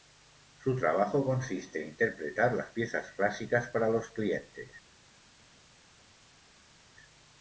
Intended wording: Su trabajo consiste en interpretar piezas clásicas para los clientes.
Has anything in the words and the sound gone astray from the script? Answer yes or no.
yes